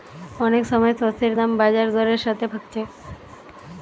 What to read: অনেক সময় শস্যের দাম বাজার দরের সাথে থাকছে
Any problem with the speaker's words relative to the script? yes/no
no